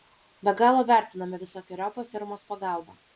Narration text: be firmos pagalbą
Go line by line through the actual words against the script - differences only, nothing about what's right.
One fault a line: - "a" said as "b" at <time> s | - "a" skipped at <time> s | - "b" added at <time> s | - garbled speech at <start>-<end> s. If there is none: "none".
- "galo vertiname visokeriopą" added at 0.6 s